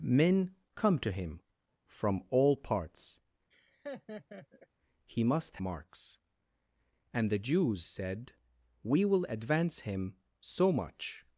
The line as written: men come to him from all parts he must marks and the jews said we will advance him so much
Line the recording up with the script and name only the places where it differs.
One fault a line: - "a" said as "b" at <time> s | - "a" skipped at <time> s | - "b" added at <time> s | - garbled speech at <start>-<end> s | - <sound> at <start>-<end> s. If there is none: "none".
- laugh at 3.5-4.7 s